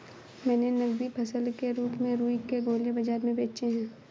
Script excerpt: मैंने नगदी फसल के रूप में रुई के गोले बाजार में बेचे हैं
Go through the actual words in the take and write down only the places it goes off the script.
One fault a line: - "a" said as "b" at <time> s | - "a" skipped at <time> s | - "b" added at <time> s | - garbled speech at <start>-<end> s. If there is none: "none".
none